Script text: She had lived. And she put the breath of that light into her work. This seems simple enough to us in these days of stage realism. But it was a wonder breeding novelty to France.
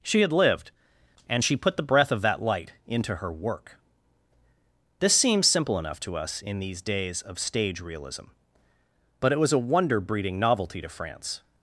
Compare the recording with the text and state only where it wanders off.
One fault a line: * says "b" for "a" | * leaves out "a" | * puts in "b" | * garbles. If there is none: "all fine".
all fine